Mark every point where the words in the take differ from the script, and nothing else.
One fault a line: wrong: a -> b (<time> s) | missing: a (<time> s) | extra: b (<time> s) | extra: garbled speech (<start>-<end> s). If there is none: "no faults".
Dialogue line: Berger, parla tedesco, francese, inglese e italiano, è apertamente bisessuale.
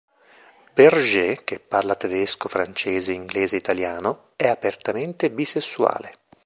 extra: che (1.4 s)